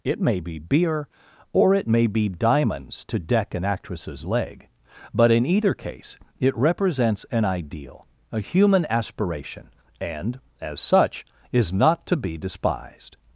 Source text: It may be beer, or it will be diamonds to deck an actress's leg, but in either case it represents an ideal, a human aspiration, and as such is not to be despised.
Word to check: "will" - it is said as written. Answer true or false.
false